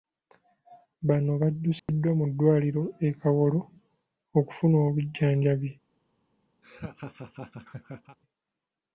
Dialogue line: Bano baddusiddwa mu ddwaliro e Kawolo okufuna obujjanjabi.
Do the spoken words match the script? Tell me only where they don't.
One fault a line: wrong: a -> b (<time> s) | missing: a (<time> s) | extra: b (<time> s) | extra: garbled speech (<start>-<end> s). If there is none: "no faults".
no faults